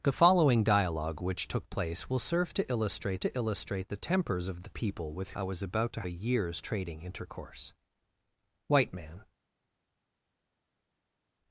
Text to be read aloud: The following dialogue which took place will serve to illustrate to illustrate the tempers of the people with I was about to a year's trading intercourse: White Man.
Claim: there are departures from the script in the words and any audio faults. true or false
false